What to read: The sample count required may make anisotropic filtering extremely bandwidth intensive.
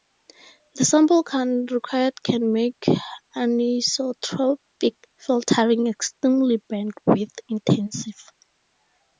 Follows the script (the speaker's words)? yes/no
no